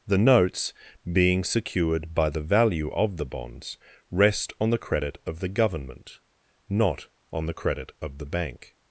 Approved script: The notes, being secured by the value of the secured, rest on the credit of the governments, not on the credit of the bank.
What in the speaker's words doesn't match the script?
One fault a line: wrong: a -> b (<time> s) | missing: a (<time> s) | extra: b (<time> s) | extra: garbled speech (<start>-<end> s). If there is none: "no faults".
wrong: secured -> bonds (3.2 s)
wrong: governments -> government (5.5 s)